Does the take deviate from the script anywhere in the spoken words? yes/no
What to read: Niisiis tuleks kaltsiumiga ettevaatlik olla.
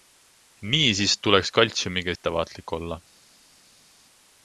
no